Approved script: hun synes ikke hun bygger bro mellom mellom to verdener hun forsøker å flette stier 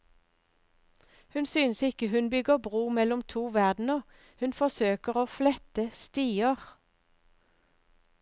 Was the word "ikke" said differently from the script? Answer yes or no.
no